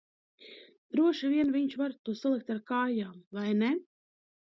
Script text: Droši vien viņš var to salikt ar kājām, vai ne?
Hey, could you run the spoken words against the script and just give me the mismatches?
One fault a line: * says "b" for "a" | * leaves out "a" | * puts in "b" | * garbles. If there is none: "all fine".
all fine